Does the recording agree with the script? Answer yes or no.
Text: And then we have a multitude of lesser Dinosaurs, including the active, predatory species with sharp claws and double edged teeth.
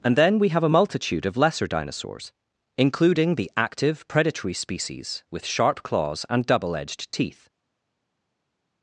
yes